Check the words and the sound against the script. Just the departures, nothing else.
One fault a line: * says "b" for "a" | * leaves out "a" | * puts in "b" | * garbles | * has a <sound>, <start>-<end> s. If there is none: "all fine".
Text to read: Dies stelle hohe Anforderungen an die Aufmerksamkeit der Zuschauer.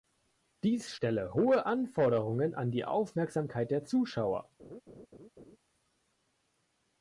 * has a laugh, 4.6-5.6 s